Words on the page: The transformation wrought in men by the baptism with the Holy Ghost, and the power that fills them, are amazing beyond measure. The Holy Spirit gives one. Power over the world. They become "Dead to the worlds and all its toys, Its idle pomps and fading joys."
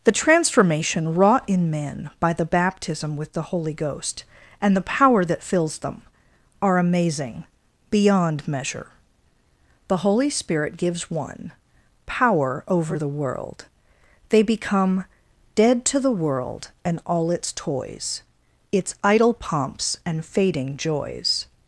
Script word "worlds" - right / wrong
wrong